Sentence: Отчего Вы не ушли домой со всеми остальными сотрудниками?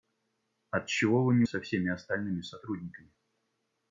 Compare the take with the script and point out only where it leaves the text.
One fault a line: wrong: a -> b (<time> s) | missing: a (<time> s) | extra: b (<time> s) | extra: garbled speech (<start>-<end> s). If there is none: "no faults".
missing: ушли домой (1.4 s)